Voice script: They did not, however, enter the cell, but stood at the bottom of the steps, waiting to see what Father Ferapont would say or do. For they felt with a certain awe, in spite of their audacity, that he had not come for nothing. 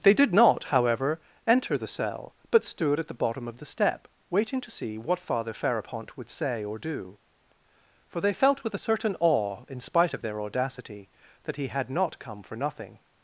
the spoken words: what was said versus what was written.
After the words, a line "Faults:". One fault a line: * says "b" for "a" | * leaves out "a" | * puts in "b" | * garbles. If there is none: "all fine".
They did not, however, enter the cell, but stood at the bottom of the step, waiting to see what Father Ferapont would say or do. For they felt with a certain awe, in spite of their audacity, that he had not come for nothing.
Faults:
* says "step" for "steps"